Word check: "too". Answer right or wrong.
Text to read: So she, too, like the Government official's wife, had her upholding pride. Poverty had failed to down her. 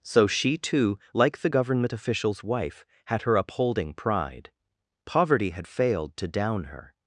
right